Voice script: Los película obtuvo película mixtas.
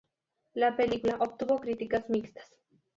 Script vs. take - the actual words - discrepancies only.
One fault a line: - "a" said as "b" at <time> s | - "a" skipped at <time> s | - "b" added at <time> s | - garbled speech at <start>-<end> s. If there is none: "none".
- "Los" said as "La" at 0.6 s
- "película" said as "críticas" at 1.6 s